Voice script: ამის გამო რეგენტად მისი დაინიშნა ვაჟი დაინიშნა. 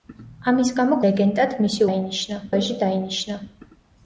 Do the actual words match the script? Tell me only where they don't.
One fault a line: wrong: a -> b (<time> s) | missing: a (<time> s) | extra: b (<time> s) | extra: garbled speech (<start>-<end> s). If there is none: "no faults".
no faults